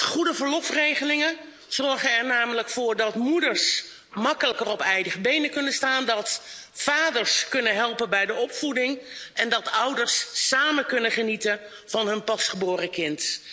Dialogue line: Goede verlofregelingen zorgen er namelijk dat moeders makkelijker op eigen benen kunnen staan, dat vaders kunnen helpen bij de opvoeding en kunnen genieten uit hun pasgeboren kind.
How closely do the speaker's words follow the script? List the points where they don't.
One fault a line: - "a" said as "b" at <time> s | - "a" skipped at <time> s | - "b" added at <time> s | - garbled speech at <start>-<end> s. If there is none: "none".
- "voor" added at 2.7 s
- "dat ouders samen" added at 9.5 s
- "uit" said as "van" at 11.8 s